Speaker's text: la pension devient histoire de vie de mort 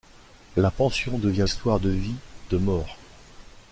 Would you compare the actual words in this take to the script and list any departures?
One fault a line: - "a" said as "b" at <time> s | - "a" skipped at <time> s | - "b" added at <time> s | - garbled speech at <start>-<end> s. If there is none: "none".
none